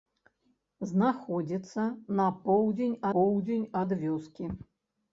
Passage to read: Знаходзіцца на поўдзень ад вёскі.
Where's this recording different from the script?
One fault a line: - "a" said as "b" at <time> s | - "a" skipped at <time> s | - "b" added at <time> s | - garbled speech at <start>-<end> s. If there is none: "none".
- "поўдзень" added at 3.2 s